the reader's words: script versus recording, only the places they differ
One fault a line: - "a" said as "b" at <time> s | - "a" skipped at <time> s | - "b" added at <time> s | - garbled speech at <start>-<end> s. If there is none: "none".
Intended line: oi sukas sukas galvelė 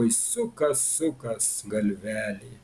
none